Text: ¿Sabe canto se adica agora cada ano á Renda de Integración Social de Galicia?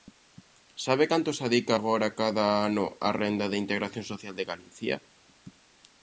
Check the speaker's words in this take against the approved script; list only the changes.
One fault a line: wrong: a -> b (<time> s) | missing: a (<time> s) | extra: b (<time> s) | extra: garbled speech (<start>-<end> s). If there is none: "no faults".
no faults